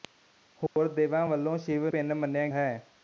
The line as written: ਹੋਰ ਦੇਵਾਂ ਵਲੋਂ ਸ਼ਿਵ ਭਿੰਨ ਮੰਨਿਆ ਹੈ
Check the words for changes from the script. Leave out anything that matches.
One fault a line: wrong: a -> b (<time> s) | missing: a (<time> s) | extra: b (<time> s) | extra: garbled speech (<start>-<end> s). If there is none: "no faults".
no faults